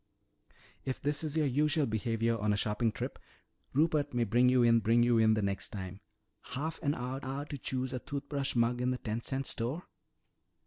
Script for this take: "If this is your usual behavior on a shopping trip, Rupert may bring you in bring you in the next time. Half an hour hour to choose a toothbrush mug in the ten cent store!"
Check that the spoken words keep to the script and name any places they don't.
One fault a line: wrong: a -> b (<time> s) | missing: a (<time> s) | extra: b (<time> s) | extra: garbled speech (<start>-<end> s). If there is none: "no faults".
no faults